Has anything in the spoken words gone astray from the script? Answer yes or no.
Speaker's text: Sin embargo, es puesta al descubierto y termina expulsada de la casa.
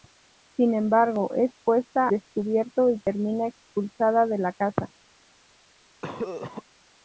yes